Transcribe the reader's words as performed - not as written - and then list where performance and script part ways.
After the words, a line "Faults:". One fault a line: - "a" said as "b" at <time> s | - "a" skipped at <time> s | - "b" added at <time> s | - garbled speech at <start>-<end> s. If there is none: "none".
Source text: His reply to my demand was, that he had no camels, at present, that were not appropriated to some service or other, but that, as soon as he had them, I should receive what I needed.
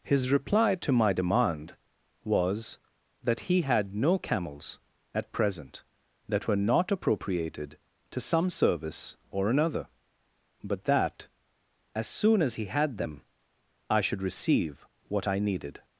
His reply to my demand was, that he had no camels, at present, that were not appropriated to some service or another, but that, as soon as he had them, I should receive what I needed.
Faults:
- "other" said as "another" at 9.5 s